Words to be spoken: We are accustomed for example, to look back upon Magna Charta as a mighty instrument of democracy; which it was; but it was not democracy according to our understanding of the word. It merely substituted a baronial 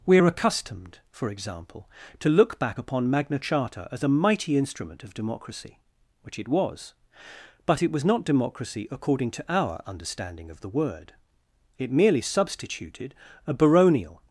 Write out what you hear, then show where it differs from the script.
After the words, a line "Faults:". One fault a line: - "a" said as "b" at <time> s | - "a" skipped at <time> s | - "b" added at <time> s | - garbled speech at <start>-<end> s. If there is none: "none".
We are accustomed for example, to look back upon Magna Charta as a mighty instrument of democracy; which it was; but it was not democracy according to our understanding of the word. It merely substituted a baronial
Faults:
none